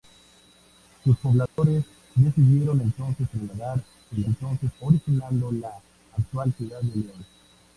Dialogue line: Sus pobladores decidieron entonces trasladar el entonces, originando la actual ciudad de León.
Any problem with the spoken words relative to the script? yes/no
no